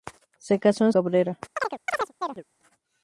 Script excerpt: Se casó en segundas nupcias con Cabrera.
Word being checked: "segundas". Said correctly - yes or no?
no